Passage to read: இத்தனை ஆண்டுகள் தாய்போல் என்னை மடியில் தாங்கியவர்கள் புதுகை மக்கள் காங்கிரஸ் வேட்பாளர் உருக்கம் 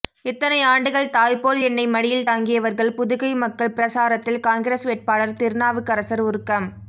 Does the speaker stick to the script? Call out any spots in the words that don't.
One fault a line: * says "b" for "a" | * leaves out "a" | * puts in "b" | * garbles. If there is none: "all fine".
* puts in "பிரசாரத்தில்"
* puts in "திருநாவுக்கரசர்"